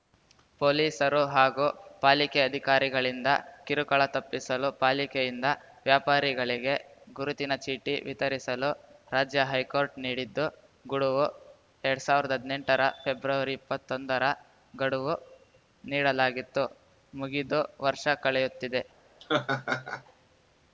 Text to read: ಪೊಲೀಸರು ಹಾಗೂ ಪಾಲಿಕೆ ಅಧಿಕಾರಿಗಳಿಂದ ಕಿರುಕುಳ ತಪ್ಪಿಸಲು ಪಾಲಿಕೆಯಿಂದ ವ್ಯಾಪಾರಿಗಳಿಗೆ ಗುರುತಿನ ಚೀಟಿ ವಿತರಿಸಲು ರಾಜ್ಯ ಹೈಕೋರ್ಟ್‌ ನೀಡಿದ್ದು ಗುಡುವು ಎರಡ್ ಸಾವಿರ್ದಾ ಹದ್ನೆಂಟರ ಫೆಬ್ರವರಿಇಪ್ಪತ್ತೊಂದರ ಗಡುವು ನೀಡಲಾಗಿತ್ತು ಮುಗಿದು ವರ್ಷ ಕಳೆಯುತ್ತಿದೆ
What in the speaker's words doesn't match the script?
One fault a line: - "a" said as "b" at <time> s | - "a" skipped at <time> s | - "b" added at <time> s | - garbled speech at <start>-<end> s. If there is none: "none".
none